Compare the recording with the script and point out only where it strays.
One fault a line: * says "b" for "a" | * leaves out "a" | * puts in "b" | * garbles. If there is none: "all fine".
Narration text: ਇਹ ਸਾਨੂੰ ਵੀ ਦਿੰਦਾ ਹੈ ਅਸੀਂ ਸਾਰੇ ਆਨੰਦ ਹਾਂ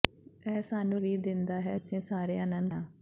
all fine